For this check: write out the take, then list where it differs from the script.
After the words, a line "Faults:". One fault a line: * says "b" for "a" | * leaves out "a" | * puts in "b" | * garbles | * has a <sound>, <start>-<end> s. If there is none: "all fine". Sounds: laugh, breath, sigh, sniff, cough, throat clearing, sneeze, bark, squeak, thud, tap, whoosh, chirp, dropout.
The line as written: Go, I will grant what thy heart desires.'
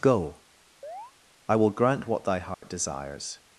Go, I will grant what thy heart desires.'
Faults:
* has a chirp, 0.8-1.1 s
* has a dropout, 2.5-2.6 s